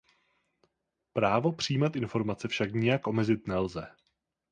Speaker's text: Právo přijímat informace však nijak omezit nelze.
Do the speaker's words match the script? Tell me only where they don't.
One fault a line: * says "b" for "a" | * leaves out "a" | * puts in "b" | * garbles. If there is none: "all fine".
all fine